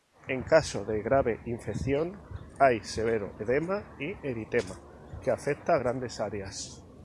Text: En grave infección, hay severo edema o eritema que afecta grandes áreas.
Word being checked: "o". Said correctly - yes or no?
no